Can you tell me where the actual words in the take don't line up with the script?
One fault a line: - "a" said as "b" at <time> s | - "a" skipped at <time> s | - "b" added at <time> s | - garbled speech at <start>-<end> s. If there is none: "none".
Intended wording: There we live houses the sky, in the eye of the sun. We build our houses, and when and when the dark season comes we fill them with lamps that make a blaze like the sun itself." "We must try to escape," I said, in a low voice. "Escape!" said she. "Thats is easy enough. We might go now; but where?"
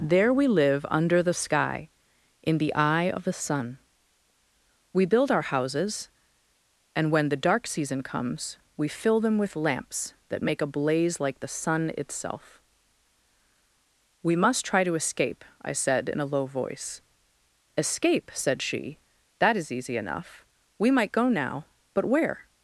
- "houses" said as "under" at 0.9 s
- "and when" skipped at 7.3 s
- "Thats" said as "That" at 19.4 s